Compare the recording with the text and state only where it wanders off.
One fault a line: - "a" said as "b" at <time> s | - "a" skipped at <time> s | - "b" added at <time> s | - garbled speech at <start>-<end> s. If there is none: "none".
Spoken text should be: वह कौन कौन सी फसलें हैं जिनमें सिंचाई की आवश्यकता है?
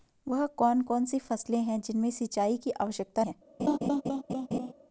none